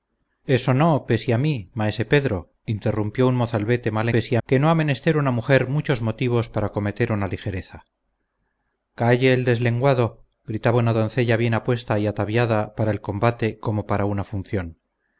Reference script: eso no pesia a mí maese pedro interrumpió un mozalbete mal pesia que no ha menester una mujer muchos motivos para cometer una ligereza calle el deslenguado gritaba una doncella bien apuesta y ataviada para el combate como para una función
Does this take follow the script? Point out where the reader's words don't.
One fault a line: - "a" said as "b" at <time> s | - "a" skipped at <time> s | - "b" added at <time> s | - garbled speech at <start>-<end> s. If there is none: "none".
none